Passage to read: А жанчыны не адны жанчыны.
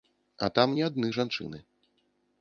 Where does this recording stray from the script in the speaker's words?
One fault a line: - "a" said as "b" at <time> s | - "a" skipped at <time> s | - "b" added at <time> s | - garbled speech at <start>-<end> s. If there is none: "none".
- "жанчыны" said as "там" at 0.6 s